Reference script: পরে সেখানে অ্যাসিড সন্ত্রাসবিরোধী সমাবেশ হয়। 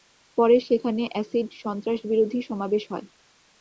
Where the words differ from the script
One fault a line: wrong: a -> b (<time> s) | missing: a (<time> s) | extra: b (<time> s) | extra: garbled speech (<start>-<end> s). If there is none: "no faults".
no faults